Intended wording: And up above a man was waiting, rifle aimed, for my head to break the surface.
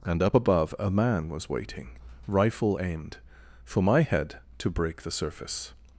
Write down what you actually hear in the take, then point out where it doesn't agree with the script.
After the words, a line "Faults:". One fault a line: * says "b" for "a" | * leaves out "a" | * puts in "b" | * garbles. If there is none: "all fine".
And up above a man was waiting, rifle aimed, for my head to break the surface.
Faults:
all fine